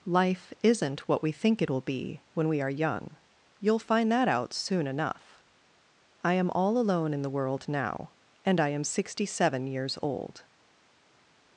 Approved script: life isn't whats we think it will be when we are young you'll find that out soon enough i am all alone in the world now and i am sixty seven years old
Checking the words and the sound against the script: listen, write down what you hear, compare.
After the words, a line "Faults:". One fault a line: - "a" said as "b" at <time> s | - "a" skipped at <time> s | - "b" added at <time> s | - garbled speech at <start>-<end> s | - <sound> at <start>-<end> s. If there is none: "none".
life isn't what we think it will be when we are young you'll find that out soon enough i am all alone in the world now and i am sixty seven years old
Faults:
- "whats" said as "what" at 1.1 s